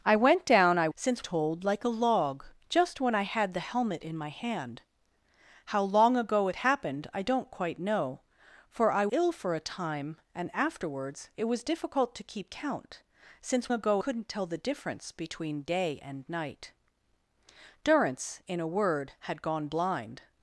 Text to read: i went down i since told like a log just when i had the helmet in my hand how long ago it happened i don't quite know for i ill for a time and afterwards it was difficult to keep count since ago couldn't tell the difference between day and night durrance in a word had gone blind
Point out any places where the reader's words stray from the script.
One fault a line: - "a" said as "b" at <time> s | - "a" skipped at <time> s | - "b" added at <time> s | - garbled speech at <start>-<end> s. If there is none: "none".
none